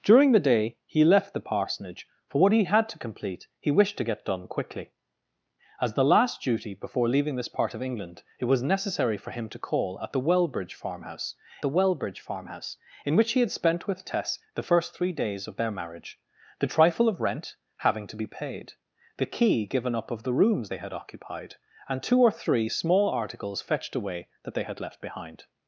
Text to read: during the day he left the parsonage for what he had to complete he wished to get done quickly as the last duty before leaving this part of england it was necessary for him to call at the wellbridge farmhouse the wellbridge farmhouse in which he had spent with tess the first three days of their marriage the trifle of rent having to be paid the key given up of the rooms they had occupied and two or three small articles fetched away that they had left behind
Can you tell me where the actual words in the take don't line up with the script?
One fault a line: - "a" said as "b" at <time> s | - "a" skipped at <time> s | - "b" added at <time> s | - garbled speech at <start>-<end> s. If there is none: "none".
none